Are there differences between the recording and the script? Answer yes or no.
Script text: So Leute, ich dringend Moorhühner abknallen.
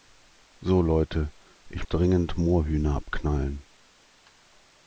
no